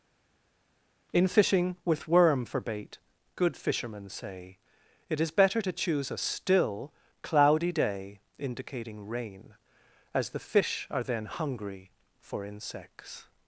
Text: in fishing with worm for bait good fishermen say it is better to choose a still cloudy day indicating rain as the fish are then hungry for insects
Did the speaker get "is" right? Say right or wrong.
right